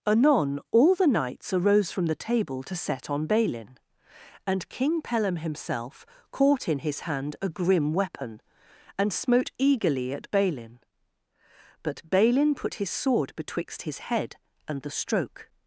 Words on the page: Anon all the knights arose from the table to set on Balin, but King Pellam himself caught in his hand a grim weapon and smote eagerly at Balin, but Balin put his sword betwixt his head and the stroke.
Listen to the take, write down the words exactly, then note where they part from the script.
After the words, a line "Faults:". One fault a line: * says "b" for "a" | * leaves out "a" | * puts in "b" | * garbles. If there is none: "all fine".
Anon all the knights arose from the table to set on Balin, and King Pellam himself caught in his hand a grim weapon and smote eagerly at Balin, but Balin put his sword betwixt his head and the stroke.
Faults:
* says "and" for "but"